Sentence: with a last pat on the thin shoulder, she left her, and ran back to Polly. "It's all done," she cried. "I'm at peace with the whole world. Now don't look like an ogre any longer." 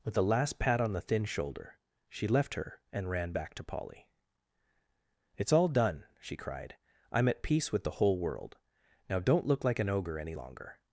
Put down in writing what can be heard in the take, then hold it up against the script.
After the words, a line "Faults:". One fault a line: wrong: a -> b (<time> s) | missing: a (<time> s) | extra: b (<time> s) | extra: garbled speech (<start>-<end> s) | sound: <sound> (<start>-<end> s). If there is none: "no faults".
with a last pat on the thin shoulder, she left her, and ran back to Polly. "It's all done," she cried. "I'm at peace with the whole world. Now don't look like an ogre any longer."
Faults:
no faults